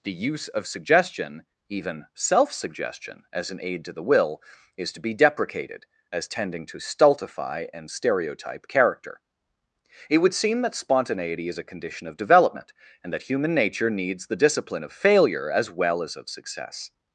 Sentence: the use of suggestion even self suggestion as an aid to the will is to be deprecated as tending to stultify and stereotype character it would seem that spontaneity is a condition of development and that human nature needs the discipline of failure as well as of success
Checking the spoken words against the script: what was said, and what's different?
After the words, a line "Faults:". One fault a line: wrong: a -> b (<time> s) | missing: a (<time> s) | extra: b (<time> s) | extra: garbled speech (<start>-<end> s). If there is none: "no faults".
the use of suggestion even self suggestion as an aid to the will is to be deprecated as tending to stultify and stereotype character it would seem that spontaneity is a condition of development and that human nature needs the discipline of failure as well as of success
Faults:
no faults